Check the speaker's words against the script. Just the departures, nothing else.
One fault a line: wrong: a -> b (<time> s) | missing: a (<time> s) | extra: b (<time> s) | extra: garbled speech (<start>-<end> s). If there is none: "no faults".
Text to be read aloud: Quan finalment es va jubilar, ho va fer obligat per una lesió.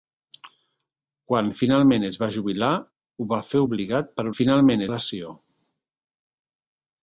wrong: una -> finalment (4.4 s)